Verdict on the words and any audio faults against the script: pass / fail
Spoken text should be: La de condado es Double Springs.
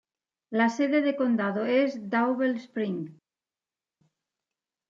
fail